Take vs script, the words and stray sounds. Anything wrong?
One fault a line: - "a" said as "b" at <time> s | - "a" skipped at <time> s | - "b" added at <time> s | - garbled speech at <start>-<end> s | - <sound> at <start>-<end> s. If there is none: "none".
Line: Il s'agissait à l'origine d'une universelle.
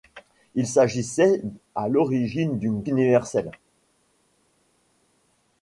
none